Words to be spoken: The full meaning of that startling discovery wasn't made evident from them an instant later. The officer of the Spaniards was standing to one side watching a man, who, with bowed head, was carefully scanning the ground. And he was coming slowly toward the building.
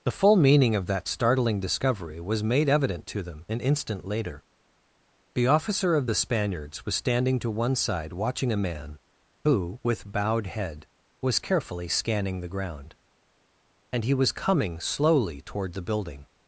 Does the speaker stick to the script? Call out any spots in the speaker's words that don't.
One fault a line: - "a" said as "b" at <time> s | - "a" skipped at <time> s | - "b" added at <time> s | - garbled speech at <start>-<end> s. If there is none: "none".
- "wasn't" said as "was" at 2.2 s
- "from" said as "to" at 3.1 s